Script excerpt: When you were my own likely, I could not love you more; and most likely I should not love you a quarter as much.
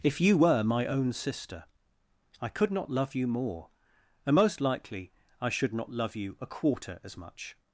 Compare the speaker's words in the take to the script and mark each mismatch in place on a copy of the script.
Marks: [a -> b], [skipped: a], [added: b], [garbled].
[When -> If] you were my own [likely, -> sister] I could not love you more; and most likely I should not love you a quarter as much.